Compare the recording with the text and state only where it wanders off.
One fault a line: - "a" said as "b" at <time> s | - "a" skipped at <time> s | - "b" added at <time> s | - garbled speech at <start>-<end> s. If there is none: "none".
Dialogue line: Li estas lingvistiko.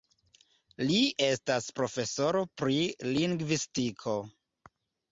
- "profesoro pri" added at 1.8 s